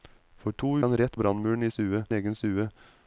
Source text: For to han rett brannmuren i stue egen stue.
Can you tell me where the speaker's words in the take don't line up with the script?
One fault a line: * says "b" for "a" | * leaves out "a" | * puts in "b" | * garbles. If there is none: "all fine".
all fine